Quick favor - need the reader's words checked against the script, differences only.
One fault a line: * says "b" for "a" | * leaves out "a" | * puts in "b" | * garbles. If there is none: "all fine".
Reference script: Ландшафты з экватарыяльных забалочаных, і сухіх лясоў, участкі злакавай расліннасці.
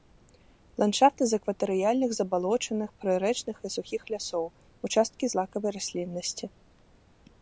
* puts in "прырэчных"